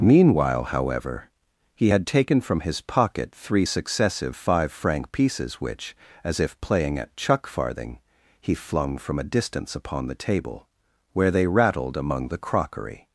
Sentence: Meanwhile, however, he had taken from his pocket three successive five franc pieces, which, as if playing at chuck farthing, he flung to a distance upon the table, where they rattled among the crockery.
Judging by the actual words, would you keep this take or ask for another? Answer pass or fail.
fail